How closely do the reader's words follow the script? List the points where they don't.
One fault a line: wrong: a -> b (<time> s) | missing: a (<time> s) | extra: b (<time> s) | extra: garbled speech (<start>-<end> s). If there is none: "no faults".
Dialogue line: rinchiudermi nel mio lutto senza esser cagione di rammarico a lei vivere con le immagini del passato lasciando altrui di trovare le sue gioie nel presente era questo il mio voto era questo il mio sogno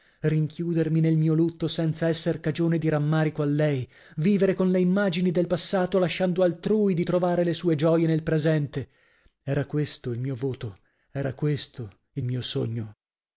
no faults